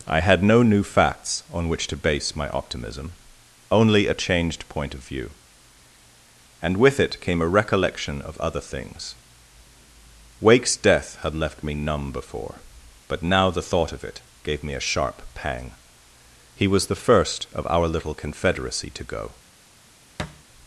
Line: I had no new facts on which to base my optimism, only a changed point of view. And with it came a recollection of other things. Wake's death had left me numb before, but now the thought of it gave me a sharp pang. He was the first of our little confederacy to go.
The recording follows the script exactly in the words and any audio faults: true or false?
false